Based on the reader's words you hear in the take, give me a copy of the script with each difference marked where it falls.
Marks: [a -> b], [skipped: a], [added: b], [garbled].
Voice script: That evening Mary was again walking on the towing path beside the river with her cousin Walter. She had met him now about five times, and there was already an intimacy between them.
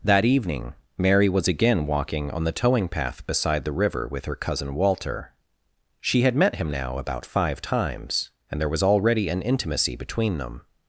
That evening Mary was again walking on the towing path beside the river with her cousin Walter. She had met him now about five times, and there was already an intimacy between them.